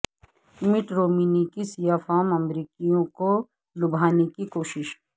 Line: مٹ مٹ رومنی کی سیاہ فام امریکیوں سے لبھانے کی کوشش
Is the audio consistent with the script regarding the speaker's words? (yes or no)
no